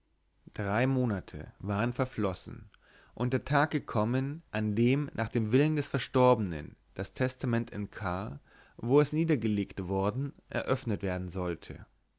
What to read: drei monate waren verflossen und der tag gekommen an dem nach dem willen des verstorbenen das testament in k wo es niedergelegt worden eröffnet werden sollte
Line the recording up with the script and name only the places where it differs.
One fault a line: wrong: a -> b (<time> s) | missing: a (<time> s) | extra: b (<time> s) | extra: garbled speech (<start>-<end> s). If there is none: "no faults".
no faults